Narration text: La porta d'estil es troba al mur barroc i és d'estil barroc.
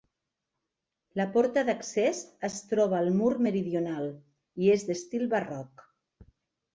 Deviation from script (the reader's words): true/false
true